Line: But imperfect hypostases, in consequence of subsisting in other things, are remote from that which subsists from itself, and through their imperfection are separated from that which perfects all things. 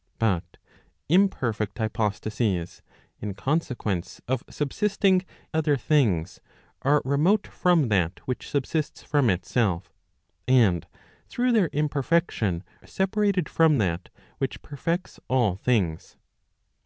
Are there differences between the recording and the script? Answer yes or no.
yes